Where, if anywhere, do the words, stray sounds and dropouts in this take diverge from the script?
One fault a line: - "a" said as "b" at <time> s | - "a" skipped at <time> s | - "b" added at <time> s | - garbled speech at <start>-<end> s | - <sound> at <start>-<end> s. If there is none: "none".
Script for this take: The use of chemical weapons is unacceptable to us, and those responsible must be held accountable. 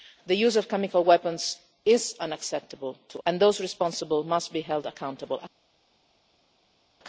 - "us" skipped at 3.2 s